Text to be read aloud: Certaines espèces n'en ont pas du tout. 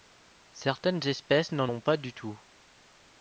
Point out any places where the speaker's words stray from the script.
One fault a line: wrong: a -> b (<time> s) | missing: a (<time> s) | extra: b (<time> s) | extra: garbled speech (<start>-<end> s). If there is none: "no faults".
no faults